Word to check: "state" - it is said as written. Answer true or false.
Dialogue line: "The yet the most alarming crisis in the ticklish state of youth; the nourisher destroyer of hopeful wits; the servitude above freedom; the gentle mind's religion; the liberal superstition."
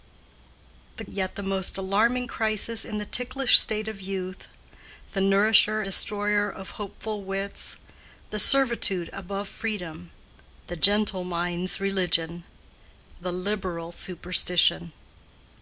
true